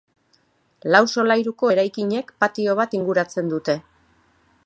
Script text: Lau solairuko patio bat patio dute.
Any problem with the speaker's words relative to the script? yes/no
yes